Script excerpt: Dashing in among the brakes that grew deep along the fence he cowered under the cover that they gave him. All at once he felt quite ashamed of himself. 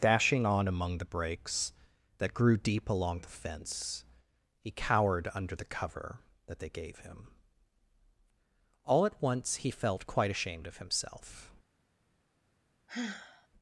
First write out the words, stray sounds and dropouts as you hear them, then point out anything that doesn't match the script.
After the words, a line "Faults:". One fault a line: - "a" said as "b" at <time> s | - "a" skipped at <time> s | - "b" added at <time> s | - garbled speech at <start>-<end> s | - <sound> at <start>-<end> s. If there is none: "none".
Dashing on among the brakes that grew deep along the fence he cowered under the cover that they gave him. All at once he felt quite ashamed of himself.
Faults:
- "in" said as "on" at 0.5 s
- sigh at 12.9-13.5 s